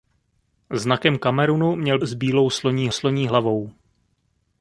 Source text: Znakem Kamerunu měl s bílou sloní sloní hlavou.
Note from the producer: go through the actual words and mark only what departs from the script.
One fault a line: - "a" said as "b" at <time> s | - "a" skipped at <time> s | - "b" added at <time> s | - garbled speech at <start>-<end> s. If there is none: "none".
none